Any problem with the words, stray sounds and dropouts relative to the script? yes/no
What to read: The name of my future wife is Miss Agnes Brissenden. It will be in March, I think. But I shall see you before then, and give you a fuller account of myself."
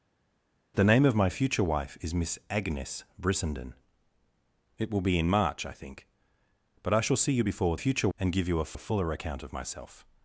yes